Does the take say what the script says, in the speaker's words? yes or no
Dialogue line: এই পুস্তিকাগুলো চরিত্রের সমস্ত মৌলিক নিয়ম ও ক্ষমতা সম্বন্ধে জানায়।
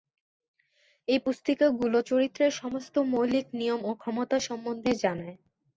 yes